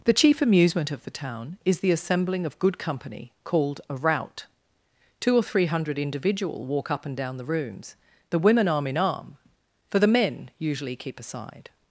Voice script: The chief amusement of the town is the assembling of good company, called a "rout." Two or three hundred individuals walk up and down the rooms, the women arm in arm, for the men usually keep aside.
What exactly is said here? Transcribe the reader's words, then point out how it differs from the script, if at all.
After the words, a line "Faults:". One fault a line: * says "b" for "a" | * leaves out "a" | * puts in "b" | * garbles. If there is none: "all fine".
The chief amusement of the town is the assembling of good company, called a "rout." Two or three hundred individual walk up and down the rooms, the women arm in arm, for the men usually keep aside.
Faults:
* says "individual" for "individuals"